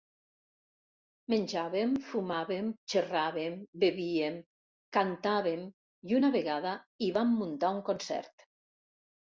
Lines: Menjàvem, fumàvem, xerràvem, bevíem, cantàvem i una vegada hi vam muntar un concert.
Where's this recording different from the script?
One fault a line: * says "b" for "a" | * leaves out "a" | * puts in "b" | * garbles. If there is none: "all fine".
all fine